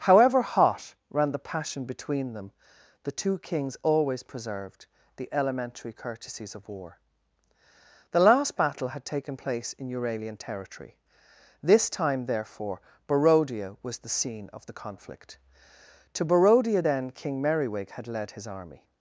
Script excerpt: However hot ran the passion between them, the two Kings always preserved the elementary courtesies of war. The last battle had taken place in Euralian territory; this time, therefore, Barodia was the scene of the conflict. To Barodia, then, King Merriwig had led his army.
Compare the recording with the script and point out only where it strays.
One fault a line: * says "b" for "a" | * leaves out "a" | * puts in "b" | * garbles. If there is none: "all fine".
all fine